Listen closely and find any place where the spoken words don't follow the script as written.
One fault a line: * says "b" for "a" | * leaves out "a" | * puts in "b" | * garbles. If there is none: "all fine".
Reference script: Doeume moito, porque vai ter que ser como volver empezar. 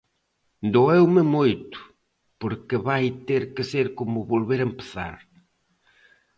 all fine